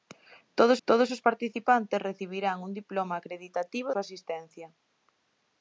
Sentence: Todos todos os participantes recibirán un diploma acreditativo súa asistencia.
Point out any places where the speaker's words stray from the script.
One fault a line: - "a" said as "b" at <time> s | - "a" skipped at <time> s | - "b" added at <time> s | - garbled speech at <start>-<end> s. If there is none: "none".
none